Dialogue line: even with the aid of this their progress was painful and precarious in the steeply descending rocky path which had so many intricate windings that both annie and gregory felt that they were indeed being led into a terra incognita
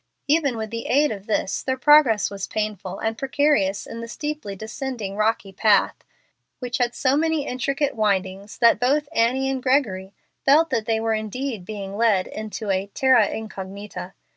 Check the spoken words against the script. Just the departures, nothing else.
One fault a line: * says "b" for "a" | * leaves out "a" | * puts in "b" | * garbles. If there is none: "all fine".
all fine